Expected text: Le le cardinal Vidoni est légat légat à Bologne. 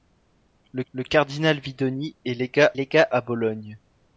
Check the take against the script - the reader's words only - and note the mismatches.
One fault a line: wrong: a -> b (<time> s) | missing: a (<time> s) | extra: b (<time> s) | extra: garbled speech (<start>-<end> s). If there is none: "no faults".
no faults